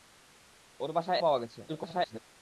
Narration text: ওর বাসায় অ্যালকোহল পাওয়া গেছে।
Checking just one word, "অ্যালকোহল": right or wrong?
wrong